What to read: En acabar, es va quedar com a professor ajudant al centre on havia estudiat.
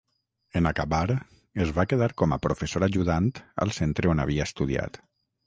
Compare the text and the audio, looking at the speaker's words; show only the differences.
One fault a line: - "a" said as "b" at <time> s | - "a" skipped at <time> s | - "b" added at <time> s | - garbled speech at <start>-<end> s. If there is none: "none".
none